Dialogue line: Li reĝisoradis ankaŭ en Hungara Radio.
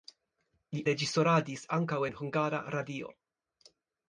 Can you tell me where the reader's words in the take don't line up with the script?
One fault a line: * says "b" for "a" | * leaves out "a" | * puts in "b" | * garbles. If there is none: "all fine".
all fine